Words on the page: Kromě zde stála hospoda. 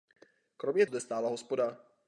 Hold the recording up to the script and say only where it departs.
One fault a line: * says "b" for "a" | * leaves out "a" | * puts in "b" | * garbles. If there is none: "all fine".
all fine